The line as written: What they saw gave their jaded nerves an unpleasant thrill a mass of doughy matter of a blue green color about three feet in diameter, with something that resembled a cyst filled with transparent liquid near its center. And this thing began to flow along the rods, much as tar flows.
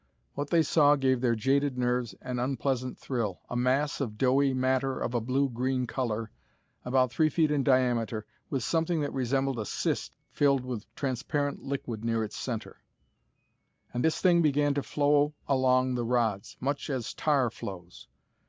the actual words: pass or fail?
pass